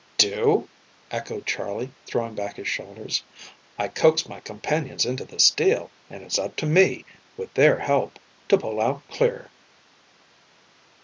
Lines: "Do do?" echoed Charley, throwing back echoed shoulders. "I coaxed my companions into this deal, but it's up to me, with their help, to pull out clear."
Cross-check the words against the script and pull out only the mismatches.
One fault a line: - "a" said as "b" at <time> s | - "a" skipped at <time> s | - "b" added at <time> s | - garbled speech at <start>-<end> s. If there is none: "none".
- "do" skipped at 0.7 s
- "echoed" said as "his" at 2.5 s
- "but" said as "and" at 6.1 s